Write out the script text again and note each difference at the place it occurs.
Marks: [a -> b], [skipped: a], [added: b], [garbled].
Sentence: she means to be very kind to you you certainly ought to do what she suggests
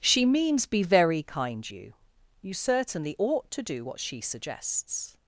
she means [skipped: to] be very kind [skipped: to] you you certainly ought to do what she suggests